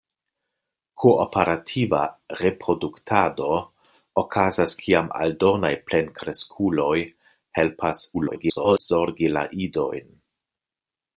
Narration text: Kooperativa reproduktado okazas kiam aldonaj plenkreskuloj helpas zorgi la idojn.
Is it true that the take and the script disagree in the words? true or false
true